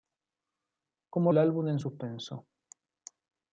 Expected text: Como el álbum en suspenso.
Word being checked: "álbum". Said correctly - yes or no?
yes